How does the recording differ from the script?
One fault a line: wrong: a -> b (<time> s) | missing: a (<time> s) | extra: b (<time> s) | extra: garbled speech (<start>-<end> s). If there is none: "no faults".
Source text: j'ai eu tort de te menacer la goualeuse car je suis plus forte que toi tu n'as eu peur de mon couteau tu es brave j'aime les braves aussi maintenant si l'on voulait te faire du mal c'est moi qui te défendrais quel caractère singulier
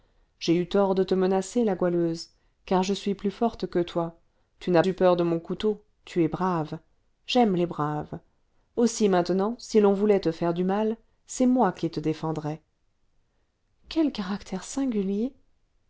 no faults